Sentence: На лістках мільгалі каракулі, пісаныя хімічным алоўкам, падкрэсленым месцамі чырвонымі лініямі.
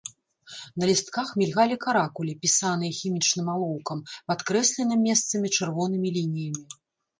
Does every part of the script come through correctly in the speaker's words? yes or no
yes